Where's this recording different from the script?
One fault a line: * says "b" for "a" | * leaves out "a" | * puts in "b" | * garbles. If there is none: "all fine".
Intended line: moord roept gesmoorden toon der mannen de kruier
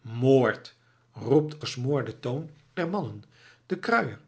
all fine